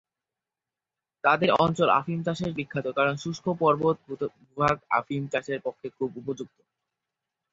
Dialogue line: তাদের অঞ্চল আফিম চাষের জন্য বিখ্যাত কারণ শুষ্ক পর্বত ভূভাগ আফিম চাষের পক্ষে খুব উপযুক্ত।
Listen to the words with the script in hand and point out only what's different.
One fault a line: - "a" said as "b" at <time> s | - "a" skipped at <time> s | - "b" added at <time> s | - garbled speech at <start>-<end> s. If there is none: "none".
- "জন্য" skipped at 2.5 s